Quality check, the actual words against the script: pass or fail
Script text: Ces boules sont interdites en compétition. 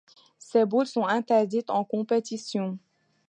pass